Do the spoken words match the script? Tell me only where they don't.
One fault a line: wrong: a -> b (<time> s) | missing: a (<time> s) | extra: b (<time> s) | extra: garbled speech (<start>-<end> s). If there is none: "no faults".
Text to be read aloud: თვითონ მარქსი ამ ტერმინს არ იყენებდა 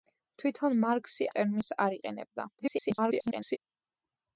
missing: ამ (1.3 s)
extra: garbled speech (2.6-3.6 s)